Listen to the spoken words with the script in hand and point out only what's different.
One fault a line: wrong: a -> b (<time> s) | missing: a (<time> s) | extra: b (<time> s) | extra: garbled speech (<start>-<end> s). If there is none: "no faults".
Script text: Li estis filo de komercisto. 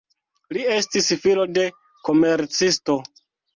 no faults